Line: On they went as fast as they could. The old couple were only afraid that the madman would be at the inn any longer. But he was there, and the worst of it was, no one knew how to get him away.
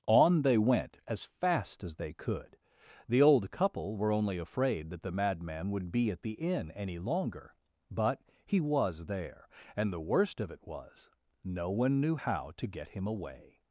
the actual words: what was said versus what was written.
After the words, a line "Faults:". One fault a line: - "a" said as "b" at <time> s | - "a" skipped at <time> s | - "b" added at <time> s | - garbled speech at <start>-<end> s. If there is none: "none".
On they went as fast as they could. The old couple were only afraid that the madman would be at the inn any longer. But he was there, and the worst of it was, no one knew how to get him away.
Faults:
none